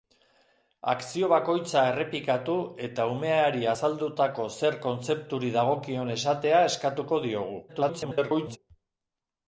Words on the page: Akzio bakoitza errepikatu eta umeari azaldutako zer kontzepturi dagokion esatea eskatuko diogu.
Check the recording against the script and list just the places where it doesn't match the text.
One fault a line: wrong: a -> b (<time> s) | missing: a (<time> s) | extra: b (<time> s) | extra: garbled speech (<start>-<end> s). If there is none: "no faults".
extra: garbled speech (7.7-8.6 s)